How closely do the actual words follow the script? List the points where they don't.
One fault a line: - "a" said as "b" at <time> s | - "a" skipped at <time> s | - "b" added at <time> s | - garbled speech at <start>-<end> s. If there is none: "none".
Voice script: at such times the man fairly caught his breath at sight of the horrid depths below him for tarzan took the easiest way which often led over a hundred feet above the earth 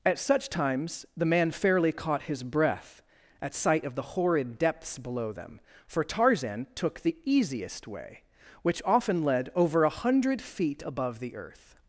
- "him" said as "them" at 5.3 s